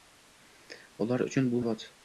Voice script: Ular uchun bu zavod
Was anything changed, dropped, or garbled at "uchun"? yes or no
no